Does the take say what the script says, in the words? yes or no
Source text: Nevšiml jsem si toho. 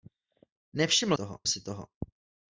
no